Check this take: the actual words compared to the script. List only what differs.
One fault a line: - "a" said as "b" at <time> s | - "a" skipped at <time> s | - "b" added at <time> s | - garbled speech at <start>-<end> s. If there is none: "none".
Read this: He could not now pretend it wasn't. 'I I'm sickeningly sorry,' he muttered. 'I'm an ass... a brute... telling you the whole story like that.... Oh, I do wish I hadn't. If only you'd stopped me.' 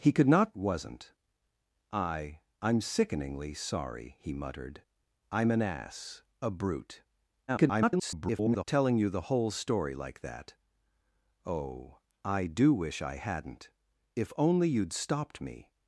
- "now pretend it" skipped at 0.6 s
- garbled speech at 7.5-8.6 s